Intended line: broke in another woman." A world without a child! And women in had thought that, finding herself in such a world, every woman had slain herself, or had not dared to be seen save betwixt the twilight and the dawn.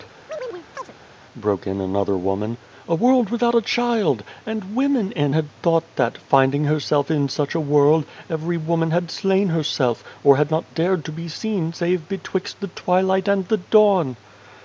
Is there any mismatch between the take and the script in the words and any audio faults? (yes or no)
yes